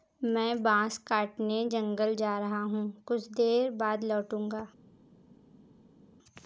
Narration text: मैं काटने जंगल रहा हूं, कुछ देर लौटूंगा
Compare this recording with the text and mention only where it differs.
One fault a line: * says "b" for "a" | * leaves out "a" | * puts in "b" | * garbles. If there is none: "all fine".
* puts in "बांस"
* puts in "जा"
* puts in "बाद"